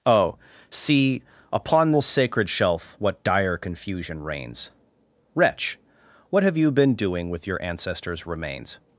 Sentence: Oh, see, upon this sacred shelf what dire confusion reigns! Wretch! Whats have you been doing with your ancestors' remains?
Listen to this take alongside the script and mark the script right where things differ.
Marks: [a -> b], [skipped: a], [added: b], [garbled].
Oh, see, upon this sacred shelf what dire confusion reigns! Wretch! [Whats -> What] have you been doing with your ancestors' remains?